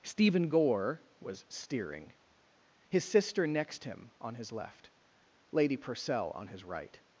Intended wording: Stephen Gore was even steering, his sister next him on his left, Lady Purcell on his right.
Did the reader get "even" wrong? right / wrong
wrong